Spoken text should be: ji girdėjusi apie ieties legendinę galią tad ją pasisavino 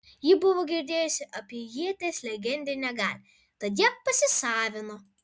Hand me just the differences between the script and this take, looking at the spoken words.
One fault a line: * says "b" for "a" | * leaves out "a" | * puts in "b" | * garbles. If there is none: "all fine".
* puts in "buvo"